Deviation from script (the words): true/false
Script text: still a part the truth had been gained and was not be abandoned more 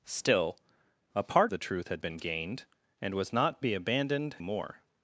false